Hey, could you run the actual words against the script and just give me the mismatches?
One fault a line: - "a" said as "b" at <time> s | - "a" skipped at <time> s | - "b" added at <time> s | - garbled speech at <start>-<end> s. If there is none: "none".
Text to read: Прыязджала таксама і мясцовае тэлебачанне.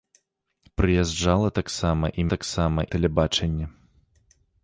- "мясцовае" said as "таксама" at 2.3 s